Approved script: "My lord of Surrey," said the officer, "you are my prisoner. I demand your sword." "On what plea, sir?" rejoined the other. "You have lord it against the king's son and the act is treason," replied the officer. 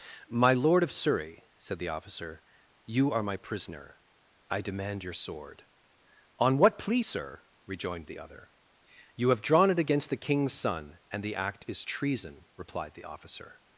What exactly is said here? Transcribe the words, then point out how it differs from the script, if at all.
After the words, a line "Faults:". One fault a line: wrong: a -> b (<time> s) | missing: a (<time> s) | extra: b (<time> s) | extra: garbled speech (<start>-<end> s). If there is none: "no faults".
"My lord of Surrey," said the officer, "you are my prisoner. I demand your sword." "On what plea, sir?" rejoined the other. "You have drawn it against the king's son and the act is treason," replied the officer.
Faults:
wrong: lord -> drawn (9.4 s)